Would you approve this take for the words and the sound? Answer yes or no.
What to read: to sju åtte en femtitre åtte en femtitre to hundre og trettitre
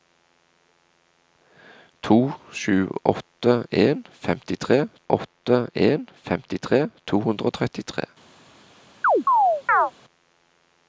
no